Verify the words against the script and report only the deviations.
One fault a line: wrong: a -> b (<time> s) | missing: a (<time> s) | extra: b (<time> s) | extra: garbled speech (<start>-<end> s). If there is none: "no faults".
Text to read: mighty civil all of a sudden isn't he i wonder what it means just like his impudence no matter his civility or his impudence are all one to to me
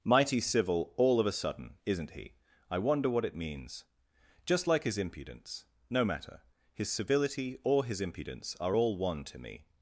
missing: to (9.4 s)